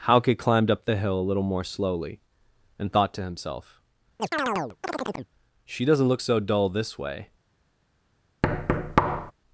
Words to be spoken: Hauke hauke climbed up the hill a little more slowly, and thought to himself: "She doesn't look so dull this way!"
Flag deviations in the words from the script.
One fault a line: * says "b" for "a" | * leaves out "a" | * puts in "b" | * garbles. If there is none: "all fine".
* leaves out "hauke"